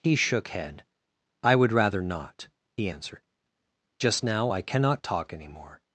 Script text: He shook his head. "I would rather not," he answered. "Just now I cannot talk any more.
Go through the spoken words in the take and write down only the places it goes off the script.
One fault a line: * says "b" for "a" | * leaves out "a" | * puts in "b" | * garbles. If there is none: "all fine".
* leaves out "his"